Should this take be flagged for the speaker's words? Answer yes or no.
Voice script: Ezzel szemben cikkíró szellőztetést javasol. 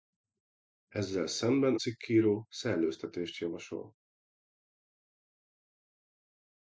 no